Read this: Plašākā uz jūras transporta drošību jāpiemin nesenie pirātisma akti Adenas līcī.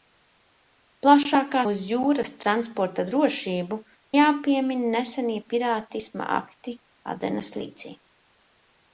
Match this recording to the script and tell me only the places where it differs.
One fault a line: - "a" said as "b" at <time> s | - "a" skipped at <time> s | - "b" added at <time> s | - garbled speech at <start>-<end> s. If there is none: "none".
none